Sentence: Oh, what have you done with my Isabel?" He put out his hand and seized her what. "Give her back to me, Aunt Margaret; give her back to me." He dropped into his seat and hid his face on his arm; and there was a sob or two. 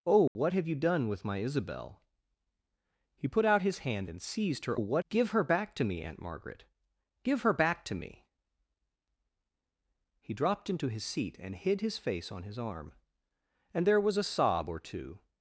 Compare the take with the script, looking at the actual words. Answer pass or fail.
pass